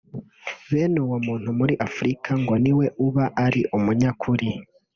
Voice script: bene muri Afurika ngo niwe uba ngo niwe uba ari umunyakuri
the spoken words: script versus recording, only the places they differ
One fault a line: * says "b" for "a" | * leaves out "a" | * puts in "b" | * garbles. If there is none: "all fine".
* puts in "uwo muntu"
* leaves out "ngo niwe uba"